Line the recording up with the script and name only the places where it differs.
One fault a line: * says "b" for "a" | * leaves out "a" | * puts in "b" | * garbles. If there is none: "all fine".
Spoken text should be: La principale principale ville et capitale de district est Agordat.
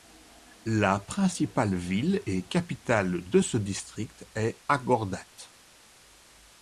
* leaves out "principale"
* puts in "ce"